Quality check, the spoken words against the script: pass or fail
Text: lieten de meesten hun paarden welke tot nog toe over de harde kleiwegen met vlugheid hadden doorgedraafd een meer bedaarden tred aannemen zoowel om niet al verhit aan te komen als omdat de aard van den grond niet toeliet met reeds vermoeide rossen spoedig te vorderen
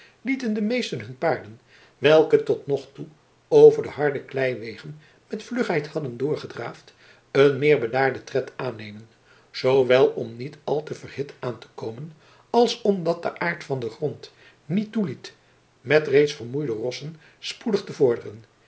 fail